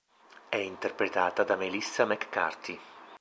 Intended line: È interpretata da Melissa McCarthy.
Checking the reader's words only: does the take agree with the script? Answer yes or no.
yes